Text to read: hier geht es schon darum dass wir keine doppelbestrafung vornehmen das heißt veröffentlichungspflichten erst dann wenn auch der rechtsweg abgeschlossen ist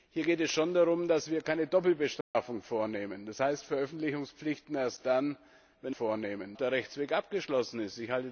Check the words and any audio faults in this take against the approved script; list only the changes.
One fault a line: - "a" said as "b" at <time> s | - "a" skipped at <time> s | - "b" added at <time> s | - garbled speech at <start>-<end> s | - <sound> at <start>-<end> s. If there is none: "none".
- dropout at 2.2-2.4 s
- "auch" said as "vornehmen" at 5.9 s